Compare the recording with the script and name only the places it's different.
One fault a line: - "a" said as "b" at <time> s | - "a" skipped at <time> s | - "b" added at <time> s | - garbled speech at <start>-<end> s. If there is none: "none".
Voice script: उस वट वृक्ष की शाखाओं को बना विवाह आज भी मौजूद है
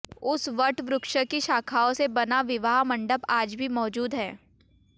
- "को" said as "से" at 1.9 s
- "मंडप" added at 2.8 s